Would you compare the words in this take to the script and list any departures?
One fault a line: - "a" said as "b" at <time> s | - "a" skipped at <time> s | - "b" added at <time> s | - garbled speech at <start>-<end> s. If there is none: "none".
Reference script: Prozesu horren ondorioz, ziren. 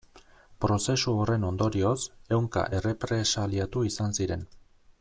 - "ehunka errepresaliatu izan" added at 2.4 s